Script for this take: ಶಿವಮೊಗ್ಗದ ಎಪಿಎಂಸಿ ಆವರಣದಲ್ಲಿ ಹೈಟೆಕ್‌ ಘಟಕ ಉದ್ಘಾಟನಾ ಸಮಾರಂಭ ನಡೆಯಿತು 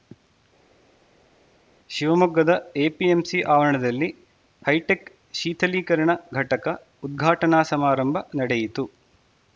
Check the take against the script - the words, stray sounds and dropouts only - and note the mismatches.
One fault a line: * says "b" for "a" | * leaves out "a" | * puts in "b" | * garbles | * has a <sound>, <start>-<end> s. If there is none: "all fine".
* puts in "ಶೀಥಲೀಕರಣ"